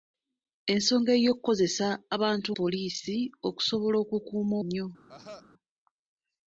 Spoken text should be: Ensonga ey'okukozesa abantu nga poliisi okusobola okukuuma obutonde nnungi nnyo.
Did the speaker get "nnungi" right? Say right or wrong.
wrong